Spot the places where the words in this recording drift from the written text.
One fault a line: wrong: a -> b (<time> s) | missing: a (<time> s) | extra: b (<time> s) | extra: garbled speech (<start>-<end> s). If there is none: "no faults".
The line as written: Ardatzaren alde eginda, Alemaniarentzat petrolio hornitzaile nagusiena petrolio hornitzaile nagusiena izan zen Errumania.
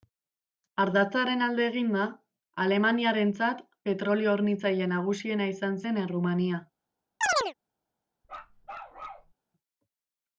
missing: petrolio hornitzaile nagusiena (5.5 s)